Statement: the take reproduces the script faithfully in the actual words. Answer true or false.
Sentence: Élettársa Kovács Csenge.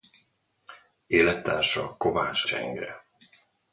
true